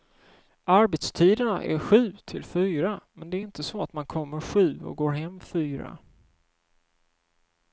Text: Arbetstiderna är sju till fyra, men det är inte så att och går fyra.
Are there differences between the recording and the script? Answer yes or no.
yes